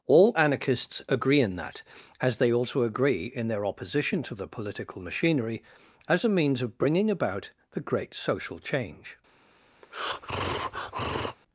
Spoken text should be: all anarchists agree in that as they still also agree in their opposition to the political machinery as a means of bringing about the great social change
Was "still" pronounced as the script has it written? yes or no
no